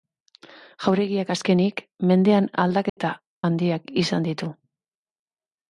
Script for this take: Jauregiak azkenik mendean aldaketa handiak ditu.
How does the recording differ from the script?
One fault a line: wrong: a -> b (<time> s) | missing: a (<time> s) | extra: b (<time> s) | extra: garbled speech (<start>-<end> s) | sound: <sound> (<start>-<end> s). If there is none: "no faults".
sound: dropout (2.9-3.0 s)
extra: izan (4.1 s)